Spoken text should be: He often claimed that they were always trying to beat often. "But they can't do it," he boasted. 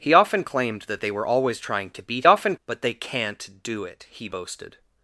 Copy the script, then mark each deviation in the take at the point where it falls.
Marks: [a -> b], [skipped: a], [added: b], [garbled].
He often claimed that they were always trying to beat often. "But they can't do it," he boasted.